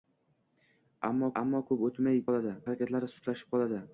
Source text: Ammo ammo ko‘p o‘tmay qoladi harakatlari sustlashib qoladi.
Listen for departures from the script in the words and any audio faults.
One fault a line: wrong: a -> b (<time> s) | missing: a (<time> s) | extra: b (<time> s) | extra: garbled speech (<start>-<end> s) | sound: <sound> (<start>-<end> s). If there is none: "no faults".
no faults